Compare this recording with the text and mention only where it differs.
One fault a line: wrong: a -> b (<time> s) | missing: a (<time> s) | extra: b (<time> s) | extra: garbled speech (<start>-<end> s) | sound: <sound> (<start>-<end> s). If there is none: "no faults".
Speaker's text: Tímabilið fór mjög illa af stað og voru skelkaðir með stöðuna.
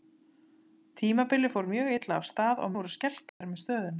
sound: dropout (3.3-3.4 s)